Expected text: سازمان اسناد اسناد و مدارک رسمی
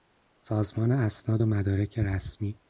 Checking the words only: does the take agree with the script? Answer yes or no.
no